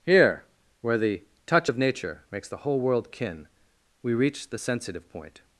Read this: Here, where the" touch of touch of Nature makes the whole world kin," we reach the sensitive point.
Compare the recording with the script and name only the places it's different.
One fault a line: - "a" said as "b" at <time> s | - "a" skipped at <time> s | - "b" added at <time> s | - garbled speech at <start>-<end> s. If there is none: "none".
- "touch of" skipped at 1.8 s